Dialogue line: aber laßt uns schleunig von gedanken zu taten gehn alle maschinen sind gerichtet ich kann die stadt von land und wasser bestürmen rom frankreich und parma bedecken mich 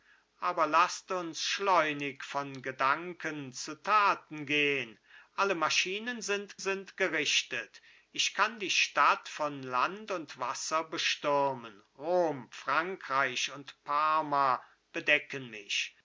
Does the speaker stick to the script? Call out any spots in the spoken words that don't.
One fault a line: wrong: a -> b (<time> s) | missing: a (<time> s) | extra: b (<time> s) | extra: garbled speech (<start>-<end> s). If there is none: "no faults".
extra: sind (6.6 s)